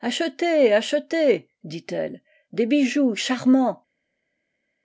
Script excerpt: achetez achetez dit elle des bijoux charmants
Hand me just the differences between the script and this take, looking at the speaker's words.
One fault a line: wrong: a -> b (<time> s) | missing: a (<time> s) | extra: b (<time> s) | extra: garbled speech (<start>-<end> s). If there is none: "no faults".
no faults